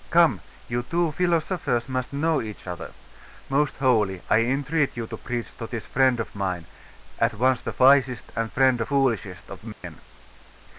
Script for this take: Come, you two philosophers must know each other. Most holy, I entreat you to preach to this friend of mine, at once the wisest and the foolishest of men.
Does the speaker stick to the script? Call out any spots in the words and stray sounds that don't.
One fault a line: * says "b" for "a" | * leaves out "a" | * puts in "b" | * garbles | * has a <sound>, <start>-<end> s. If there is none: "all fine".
* says "friend" for "the"
* has a dropout, 9.7-9.8 s